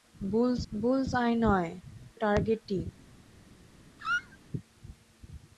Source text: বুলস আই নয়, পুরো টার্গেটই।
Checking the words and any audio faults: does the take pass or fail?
fail